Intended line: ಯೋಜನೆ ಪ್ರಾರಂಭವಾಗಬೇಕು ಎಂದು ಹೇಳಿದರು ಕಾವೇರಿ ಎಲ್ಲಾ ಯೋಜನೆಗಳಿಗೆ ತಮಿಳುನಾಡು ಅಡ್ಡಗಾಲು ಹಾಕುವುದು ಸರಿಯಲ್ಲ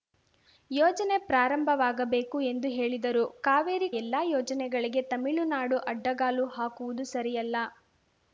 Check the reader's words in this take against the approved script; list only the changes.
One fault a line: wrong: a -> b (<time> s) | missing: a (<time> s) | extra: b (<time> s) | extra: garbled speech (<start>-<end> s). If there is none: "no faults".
no faults